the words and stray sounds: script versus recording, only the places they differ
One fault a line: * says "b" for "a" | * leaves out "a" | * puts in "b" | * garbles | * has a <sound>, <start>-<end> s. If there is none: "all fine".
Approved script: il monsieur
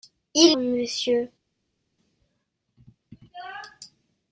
all fine